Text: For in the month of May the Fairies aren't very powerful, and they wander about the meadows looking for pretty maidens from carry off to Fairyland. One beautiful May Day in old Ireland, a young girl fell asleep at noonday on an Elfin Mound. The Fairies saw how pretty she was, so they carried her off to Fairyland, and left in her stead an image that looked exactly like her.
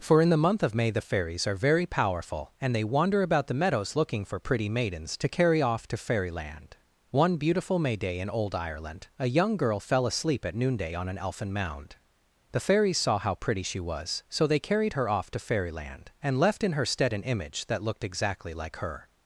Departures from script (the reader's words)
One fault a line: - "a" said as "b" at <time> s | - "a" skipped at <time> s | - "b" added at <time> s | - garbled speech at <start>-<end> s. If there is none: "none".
- "aren't" said as "are" at 1.4 s
- "from" said as "to" at 5.2 s